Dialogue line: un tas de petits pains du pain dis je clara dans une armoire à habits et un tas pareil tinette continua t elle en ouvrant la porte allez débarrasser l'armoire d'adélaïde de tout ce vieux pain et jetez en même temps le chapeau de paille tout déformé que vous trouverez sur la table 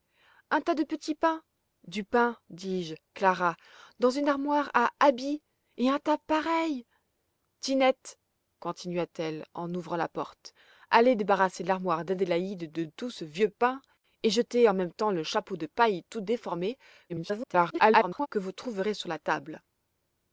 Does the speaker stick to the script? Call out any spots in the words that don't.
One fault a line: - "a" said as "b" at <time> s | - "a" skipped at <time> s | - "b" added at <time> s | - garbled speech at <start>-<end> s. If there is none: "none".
- garbled speech at 17.1-18.3 s